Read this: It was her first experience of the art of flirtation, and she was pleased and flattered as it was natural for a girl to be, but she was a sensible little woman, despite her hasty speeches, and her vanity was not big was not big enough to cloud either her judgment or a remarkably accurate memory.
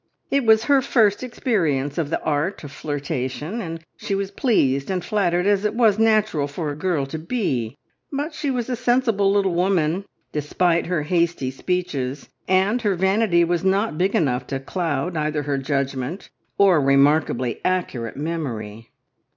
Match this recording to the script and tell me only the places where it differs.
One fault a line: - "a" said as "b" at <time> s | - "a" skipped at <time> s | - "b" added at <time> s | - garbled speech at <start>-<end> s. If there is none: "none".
- "was not big" skipped at 14.2 s